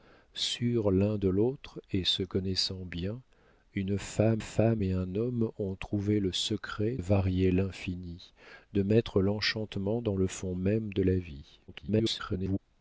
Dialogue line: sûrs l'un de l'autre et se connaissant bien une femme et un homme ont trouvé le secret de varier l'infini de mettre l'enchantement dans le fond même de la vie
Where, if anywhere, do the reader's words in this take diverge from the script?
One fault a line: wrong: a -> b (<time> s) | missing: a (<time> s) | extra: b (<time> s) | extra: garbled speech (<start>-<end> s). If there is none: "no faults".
extra: femme (4.4 s)
missing: de (7.0 s)
extra: garbled speech (11.7-12.6 s)